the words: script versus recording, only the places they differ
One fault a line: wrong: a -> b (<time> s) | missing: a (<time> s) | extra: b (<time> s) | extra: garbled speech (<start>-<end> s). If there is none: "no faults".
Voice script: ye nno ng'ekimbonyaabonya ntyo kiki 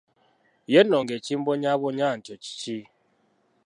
no faults